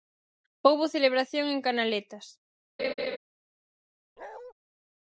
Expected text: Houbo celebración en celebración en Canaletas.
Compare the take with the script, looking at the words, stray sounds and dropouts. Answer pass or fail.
fail